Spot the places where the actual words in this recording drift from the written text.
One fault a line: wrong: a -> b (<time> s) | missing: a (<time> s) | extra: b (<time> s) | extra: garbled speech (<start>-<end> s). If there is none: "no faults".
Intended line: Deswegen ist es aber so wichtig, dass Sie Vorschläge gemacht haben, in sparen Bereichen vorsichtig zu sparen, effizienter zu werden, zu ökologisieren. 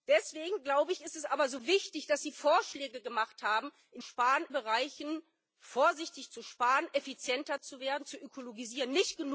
no faults